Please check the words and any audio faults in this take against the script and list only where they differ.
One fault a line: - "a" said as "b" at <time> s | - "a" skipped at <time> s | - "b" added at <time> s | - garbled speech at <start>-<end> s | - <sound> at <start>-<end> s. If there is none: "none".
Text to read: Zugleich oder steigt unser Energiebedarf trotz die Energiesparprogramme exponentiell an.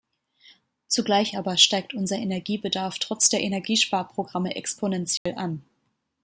- "oder" said as "aber" at 1.4 s
- "die" said as "der" at 3.3 s
- dropout at 5.2-5.3 s